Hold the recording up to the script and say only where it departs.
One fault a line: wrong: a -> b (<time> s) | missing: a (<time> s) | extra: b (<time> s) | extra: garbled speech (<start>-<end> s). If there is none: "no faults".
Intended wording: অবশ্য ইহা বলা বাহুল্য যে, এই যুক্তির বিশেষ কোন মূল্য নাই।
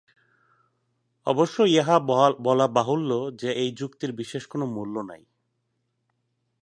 no faults